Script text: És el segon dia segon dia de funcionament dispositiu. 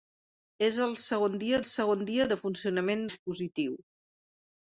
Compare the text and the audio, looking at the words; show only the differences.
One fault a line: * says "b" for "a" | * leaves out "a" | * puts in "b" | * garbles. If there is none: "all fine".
all fine